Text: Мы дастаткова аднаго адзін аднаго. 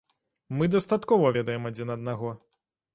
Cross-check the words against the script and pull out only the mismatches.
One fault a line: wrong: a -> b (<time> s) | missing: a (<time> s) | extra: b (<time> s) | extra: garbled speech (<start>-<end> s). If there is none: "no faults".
wrong: аднаго -> ведаем (1.4 s)